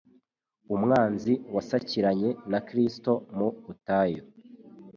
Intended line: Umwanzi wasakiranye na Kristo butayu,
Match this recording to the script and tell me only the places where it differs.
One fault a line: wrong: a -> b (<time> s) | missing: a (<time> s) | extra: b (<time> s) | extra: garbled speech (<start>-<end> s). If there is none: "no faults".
extra: mu (3.4 s)